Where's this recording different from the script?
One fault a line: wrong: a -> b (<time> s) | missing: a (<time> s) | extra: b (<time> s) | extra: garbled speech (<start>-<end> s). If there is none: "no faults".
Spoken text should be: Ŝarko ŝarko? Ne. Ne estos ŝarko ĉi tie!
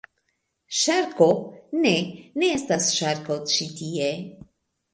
missing: ŝarko (1.3 s)
wrong: estos -> estas (2.5 s)